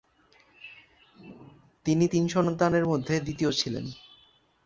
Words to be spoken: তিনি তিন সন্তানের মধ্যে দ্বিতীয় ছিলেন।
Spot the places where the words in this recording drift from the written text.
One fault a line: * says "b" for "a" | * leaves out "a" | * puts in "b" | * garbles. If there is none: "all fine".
all fine